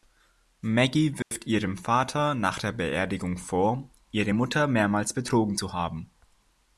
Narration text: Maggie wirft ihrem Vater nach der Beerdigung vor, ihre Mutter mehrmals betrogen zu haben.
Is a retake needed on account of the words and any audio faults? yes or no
yes